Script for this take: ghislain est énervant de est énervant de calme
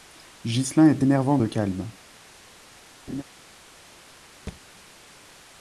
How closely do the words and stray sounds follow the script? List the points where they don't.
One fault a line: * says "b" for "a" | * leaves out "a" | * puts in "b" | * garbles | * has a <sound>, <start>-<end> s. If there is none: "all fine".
* leaves out "est énervant de"
* has a laugh, 3.1-3.2 s
* has a thud, 4.5-4.6 s